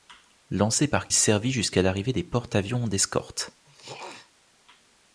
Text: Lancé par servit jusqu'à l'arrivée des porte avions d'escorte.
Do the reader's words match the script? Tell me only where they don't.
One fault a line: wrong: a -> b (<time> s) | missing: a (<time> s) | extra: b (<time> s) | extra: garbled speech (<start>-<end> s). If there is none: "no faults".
no faults